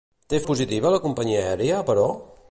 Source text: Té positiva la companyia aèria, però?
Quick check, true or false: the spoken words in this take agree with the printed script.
true